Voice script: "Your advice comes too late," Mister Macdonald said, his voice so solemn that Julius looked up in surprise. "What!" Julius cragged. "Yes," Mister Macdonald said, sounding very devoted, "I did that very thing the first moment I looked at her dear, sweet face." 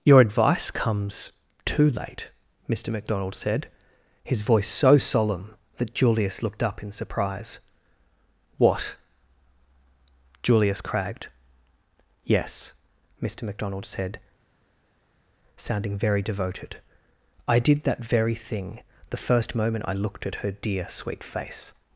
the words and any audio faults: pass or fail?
pass